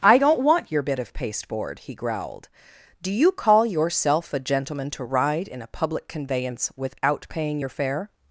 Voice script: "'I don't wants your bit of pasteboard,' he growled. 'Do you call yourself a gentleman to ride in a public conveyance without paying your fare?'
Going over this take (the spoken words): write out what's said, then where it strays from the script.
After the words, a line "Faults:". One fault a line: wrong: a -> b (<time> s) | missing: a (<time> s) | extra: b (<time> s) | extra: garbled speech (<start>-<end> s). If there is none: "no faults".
"'I don't want your bit of pasteboard,' he growled. 'Do you call yourself a gentleman to ride in a public conveyance without paying your fare?'
Faults:
wrong: wants -> want (0.4 s)